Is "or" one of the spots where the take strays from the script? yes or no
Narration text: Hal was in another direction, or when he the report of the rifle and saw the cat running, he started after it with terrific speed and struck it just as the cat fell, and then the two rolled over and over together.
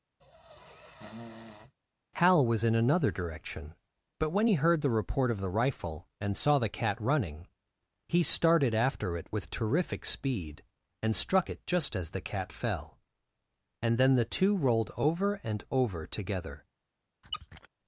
yes